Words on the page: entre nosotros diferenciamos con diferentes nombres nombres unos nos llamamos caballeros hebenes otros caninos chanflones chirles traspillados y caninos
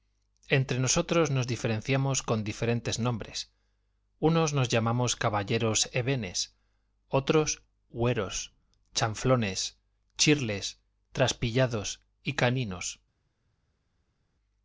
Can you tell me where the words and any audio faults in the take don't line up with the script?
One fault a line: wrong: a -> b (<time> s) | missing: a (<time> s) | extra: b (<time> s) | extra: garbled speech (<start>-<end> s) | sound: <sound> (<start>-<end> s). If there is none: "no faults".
extra: nos (1.3 s)
missing: nombres (3.5 s)
wrong: caninos -> hueros (7.9 s)